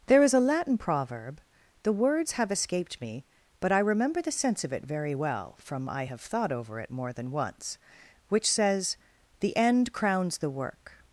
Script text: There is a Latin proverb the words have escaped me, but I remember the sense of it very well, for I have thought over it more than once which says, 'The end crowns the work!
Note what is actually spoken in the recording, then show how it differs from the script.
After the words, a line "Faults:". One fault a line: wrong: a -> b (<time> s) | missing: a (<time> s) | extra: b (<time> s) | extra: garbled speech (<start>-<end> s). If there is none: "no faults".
There is a Latin proverb the words have escaped me, but I remember the sense of it very well, from I have thought over it more than once which says, 'The end crowns the work!
Faults:
wrong: for -> from (5.6 s)